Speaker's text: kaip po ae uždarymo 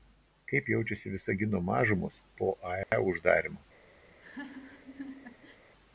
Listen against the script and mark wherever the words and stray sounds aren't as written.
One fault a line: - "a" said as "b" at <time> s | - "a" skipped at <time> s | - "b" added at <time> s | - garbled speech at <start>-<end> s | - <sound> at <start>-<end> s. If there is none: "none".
- "jaučiasi visagino mažumos" added at 0.7 s
- dropout at 2.8-2.9 s
- laugh at 4.1-5.6 s